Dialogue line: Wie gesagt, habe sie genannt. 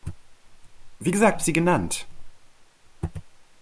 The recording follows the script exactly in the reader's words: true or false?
true